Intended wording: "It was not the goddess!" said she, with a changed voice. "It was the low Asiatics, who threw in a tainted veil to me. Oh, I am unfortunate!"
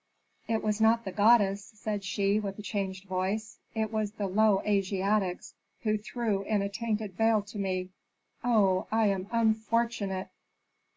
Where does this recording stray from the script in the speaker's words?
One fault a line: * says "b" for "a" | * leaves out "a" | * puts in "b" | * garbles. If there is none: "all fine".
all fine